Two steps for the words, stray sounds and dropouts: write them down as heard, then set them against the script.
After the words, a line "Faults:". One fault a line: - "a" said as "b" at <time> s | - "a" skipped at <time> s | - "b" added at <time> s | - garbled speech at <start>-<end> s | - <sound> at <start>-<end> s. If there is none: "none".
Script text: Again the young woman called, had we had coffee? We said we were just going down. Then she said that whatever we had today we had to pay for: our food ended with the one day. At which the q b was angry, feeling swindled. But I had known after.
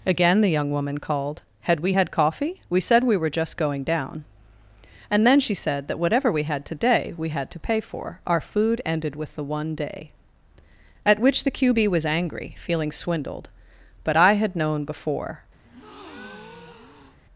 Again the young woman called, had we had coffee? We said we were just going down. And then she said that whatever we had today we had to pay for: our food ended with the one day. At which the q b was angry, feeling swindled. But I had known before.
Faults:
- "And" added at 5.1 s
- "after" said as "before" at 14.8 s
- breath at 15.6-17.2 s